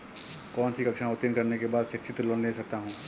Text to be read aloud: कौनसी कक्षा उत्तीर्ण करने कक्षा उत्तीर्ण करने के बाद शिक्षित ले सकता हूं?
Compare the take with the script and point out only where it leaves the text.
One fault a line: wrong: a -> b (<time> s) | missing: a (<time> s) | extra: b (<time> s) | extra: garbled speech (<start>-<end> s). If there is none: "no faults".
missing: कक्षा उत्तीर्ण करने (1.6 s)
extra: लोंन (2.2 s)